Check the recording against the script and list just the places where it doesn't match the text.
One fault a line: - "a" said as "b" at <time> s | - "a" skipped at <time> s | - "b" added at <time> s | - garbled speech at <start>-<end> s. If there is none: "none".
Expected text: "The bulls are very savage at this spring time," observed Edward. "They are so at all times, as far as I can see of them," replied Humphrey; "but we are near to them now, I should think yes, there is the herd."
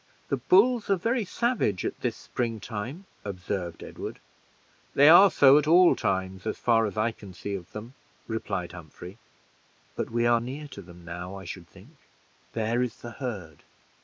- "yes" skipped at 12.0 s